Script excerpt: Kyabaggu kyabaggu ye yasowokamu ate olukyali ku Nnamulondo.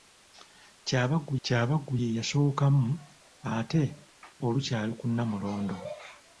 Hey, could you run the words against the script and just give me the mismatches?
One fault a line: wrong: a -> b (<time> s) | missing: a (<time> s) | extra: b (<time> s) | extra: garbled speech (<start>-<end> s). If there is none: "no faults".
no faults